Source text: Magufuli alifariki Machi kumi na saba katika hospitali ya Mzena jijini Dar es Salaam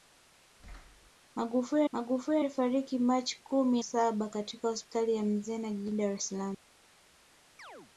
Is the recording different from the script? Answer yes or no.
yes